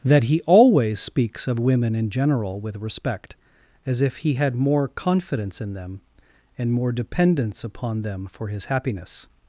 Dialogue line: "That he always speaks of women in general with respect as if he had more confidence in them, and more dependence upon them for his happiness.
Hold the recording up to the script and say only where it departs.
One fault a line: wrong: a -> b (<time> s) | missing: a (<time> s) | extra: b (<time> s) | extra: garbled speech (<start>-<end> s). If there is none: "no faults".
no faults